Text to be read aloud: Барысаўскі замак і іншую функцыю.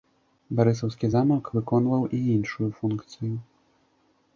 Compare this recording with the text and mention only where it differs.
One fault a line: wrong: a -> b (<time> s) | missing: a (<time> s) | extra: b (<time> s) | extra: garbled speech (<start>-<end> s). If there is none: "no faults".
extra: выконваў (1.6 s)